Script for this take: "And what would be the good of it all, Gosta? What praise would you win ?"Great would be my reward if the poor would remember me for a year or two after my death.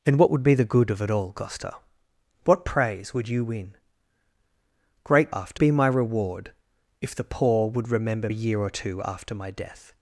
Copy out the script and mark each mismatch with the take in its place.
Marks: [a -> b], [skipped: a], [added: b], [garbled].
"And what would be the good of it all, Gosta? What praise would you win ?"Great [would -> after] be my reward if the poor would remember [skipped: me for] a year or two after my death.